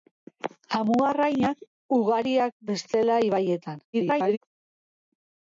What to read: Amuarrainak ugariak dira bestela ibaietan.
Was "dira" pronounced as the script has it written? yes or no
no